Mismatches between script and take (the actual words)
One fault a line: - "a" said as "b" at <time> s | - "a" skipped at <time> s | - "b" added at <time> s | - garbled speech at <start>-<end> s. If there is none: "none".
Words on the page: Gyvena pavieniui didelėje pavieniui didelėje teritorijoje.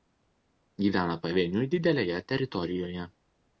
- "pavieniui didelėje" skipped at 2.2 s